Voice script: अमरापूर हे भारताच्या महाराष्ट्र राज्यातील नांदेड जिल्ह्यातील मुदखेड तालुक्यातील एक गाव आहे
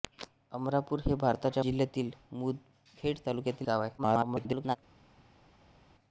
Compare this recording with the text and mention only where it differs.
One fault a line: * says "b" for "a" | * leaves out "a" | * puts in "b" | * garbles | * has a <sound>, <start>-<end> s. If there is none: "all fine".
* leaves out "महाराष्ट्र राज्यातील नांदेड"
* leaves out "एक"
* garbles